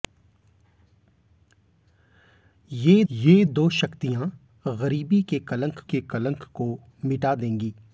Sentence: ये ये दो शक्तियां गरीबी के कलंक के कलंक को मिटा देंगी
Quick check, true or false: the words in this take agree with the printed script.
true